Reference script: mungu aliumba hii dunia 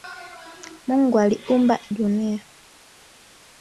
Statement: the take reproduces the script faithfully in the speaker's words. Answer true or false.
false